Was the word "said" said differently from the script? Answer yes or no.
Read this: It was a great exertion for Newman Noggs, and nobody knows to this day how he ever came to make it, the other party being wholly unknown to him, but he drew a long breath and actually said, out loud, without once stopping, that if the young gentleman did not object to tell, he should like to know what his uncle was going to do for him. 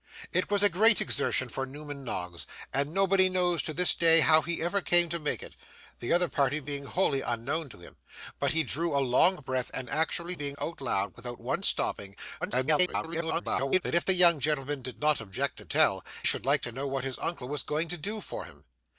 yes